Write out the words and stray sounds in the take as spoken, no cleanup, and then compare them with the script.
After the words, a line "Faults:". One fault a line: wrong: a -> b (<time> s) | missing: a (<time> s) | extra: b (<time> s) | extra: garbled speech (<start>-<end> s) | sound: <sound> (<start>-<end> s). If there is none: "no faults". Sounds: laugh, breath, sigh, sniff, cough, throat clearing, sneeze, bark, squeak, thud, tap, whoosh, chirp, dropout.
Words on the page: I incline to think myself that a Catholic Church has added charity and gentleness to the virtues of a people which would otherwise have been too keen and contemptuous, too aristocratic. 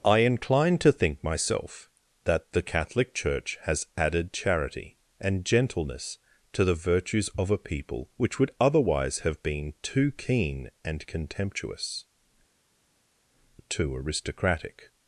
I incline to think myself that the Catholic Church has added charity and gentleness to the virtues of a people which would otherwise have been too keen and contemptuous, too aristocratic.
Faults:
wrong: a -> the (2.5 s)